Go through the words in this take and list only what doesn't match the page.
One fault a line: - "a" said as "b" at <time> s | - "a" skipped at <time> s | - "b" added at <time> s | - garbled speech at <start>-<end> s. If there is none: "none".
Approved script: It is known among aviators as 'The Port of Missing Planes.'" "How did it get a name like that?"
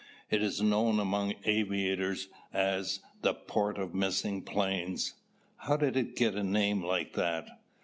none